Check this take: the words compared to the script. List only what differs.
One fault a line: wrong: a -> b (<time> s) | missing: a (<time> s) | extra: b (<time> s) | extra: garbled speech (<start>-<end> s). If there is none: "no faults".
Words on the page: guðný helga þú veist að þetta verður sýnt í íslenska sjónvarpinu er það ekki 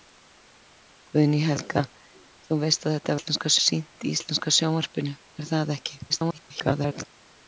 wrong: verður -> íslenska (3.2 s)
extra: garbled speech (6.1-7.0 s)